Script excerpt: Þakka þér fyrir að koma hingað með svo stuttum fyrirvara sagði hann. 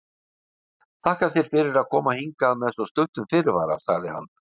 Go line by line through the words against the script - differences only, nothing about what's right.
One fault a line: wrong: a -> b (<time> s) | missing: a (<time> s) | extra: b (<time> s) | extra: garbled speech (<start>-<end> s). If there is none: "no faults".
no faults